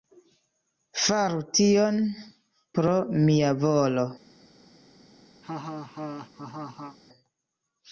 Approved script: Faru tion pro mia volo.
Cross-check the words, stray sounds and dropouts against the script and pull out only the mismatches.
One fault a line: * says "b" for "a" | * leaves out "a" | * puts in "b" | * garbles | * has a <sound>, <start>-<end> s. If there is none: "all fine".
* has a laugh, 5.4-7.0 s